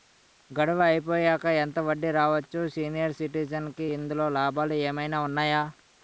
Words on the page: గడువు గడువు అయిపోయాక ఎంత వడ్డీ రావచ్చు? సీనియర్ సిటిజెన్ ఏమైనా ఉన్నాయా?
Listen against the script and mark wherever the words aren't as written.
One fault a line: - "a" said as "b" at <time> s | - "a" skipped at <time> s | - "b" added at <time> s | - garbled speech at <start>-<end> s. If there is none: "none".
- "గడువు" skipped at 0.8 s
- "కి ఇందులో లాభాలు" added at 3.7 s